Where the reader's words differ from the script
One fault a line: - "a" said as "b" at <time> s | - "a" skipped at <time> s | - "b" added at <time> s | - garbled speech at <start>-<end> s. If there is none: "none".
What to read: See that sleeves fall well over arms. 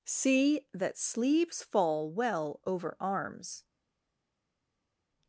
none